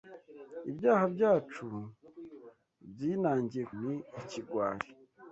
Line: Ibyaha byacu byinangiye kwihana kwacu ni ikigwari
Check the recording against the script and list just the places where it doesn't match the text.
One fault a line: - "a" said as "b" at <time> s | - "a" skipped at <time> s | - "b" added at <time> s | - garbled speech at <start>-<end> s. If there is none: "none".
- "kwihana kwacu" skipped at 3.6 s